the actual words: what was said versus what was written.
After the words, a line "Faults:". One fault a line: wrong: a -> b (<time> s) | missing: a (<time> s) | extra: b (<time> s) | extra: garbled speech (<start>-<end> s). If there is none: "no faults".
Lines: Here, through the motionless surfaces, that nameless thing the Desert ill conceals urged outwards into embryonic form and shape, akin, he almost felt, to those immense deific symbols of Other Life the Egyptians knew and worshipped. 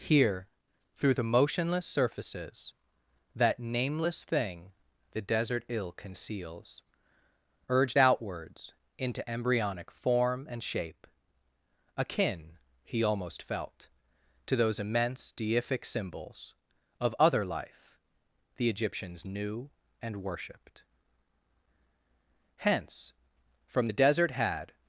Here, through the motionless surfaces, that nameless thing the Desert ill conceals urged outwards into embryonic form and shape, akin, he almost felt, to those immense deific symbols of Other Life the Egyptians knew and worshipped. Hence, from the Desert, had
Faults:
extra: Hence from the Desert had (22.6 s)